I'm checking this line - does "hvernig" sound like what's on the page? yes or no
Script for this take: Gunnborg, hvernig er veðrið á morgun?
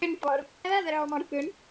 no